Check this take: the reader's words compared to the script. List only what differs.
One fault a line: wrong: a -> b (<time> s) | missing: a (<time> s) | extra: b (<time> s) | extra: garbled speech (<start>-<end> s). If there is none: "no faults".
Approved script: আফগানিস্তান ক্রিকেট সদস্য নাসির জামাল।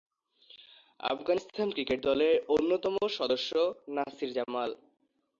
extra: দলের অন্যতম (2.1 s)